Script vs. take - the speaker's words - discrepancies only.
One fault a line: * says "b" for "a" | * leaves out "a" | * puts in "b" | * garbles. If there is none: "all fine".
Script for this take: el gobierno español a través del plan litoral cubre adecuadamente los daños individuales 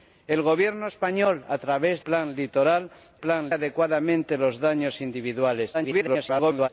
* leaves out "del"
* says "plan" for "cubre"
* garbles